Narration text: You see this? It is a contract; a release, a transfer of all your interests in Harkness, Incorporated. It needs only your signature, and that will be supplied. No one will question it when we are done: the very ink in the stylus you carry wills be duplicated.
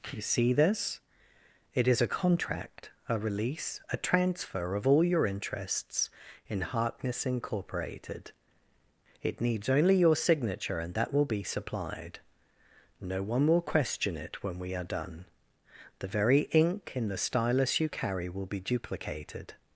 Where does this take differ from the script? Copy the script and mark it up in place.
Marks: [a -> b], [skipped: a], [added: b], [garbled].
You see this? It is a contract; a release, a transfer of all your interests in Harkness, Incorporated. It needs only your signature, and that will be supplied. No one will question it when we are done: the very ink in the stylus you carry [wills -> will] be duplicated.